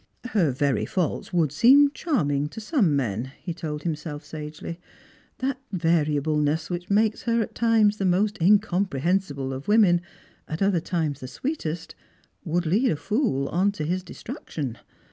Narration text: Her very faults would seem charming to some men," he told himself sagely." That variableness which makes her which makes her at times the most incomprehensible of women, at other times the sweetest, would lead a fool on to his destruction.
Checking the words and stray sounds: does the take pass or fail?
fail